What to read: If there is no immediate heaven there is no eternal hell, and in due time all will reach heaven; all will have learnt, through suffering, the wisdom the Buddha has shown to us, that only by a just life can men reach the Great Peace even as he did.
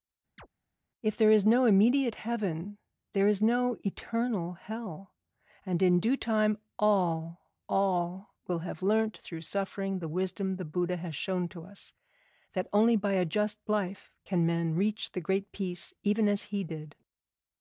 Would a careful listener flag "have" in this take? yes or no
no